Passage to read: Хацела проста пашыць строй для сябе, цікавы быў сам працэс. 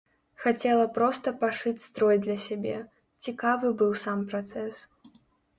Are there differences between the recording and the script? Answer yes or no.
no